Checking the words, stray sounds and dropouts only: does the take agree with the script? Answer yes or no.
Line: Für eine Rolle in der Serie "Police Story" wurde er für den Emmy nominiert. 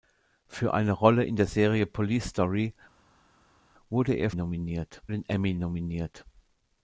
no